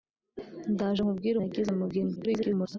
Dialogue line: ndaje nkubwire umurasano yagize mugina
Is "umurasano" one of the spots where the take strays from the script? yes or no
yes